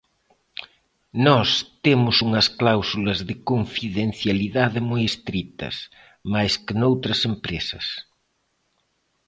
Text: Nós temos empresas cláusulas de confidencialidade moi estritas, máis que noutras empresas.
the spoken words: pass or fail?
fail